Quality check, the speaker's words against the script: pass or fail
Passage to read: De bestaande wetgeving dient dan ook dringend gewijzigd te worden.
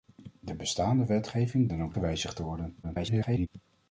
fail